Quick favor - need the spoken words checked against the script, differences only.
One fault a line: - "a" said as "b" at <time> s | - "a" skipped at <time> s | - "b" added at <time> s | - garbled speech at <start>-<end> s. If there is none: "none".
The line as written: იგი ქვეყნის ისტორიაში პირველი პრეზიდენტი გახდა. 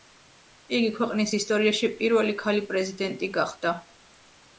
- "ქალი" added at 2.4 s